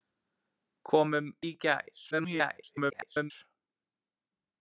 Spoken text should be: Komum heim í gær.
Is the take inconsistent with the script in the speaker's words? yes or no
yes